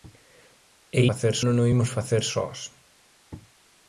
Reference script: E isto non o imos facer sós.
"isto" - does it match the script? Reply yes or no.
no